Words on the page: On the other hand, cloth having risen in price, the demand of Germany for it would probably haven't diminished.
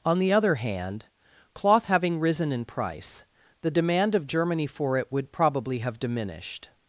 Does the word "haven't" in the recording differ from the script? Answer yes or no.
yes